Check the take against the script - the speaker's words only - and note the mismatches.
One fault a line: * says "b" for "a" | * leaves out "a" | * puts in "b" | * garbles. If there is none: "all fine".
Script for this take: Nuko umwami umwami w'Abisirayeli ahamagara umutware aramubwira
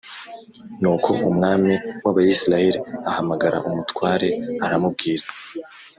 * leaves out "umwami"